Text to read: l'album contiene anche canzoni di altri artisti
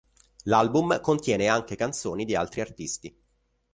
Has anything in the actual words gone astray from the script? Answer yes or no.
no